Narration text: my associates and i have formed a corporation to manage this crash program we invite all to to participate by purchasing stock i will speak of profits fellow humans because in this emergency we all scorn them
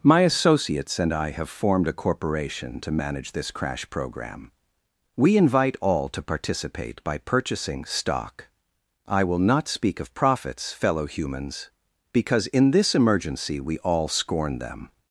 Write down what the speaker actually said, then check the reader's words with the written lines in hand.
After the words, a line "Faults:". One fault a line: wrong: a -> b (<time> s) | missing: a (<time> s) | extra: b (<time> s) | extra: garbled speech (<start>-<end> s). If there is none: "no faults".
my associates and i have formed a corporation to manage this crash program we invite all to participate by purchasing stock i will not speak of profits fellow humans because in this emergency we all scorn them
Faults:
missing: to (6.2 s)
extra: not (9.4 s)